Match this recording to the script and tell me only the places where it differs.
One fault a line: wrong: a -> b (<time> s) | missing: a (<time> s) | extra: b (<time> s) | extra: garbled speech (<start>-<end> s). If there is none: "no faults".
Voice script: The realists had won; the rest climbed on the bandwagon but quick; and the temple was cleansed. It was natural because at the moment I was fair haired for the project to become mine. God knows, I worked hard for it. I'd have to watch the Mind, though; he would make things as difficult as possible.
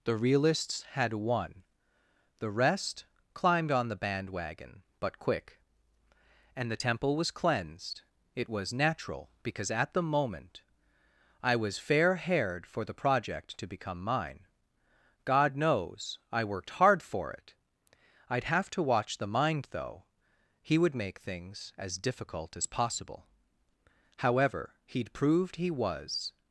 extra: However he'd proved he was (24.2 s)